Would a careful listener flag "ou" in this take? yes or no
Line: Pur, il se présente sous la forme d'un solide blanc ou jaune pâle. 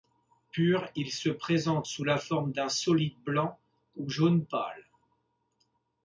no